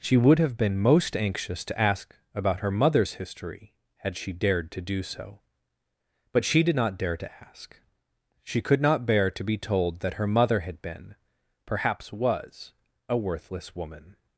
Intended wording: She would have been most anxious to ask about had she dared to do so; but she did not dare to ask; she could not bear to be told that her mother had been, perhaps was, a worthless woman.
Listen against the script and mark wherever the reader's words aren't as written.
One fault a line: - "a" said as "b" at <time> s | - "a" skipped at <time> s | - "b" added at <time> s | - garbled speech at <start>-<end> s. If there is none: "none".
- "her mother's history" added at 2.6 s